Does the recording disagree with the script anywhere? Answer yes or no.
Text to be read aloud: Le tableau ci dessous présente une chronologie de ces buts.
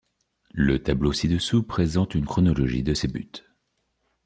no